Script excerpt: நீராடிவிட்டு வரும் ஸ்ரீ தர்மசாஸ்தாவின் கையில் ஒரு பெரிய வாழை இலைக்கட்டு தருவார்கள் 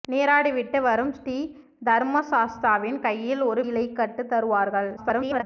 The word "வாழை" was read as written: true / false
false